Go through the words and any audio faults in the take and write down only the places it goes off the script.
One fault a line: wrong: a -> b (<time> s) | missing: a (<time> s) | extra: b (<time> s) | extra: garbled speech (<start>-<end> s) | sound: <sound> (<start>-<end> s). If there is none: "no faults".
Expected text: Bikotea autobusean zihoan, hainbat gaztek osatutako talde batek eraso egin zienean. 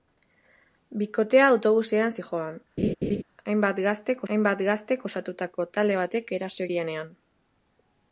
sound: laugh (2.8-3.2 s)
extra: hainbat gaztek (4.3 s)
missing: egin (6.7 s)